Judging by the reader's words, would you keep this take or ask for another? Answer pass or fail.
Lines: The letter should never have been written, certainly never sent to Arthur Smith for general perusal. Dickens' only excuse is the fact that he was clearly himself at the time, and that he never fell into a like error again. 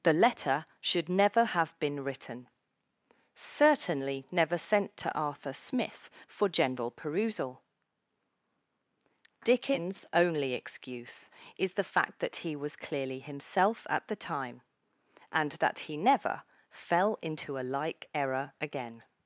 pass